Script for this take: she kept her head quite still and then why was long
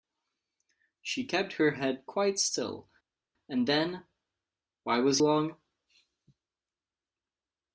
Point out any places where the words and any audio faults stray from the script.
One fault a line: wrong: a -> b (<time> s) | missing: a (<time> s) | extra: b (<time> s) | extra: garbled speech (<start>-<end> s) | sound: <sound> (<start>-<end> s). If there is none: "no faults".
no faults